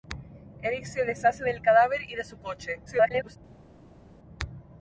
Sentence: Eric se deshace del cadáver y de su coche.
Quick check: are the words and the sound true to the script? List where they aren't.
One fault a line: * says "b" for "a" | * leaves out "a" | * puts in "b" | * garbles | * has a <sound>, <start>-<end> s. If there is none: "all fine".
* garbles